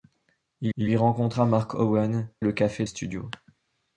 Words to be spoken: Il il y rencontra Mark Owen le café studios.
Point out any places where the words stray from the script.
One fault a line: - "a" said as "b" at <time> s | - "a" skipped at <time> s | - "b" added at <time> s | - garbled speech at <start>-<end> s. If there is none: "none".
none